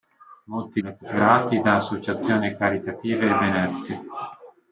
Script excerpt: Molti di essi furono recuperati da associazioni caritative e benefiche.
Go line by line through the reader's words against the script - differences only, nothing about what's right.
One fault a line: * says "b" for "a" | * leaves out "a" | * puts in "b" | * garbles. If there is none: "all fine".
* leaves out "di essi furono"